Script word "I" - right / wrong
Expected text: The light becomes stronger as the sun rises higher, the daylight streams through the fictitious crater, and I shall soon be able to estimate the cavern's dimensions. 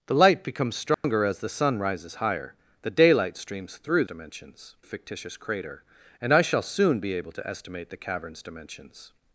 right